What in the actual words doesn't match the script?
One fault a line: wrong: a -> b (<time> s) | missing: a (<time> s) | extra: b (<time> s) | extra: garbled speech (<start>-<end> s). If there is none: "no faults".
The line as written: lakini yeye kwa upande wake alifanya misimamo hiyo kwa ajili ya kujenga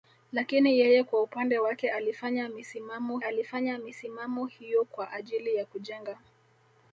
extra: alifanya misimamo (3.2 s)